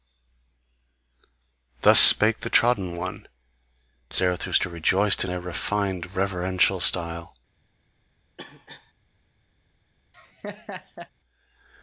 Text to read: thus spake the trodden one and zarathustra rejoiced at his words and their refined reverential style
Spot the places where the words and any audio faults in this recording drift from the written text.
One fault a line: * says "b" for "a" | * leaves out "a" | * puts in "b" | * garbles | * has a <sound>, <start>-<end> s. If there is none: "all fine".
* leaves out "and"
* leaves out "his words and"
* has a cough, 8.4-8.9 s
* has a laugh, 10.1-11.1 s